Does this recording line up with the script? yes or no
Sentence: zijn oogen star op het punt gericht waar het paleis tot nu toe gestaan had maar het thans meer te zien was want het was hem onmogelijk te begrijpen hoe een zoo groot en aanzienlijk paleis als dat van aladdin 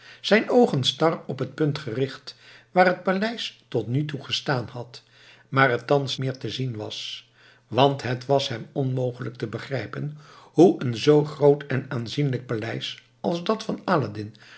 yes